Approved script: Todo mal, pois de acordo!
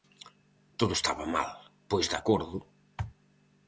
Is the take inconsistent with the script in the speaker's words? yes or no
yes